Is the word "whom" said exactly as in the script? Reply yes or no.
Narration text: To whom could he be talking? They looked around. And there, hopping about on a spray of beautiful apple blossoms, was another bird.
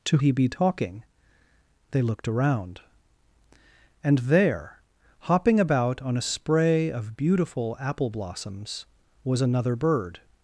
no